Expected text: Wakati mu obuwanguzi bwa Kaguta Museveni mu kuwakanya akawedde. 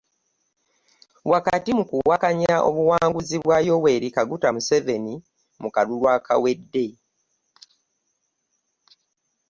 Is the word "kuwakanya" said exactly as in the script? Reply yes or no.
no